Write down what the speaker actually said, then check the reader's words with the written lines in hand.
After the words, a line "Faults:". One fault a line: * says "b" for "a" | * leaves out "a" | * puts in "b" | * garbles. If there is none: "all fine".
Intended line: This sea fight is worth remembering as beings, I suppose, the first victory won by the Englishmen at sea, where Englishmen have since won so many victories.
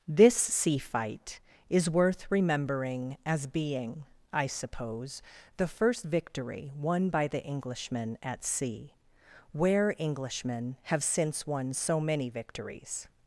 This sea fight is worth remembering as being, I suppose, the first victory won by the Englishmen at sea, where Englishmen have since won so many victories.
Faults:
* says "being" for "beings"